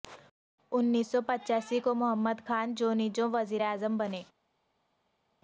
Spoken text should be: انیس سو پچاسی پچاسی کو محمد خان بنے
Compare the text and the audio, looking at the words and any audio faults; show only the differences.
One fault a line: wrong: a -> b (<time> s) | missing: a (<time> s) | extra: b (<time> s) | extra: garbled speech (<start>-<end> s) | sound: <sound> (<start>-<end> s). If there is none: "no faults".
missing: پچاسی (1.8 s)
extra: جونیجو وزیر اعظم (2.7 s)